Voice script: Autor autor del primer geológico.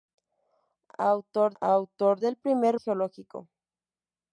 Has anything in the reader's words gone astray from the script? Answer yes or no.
no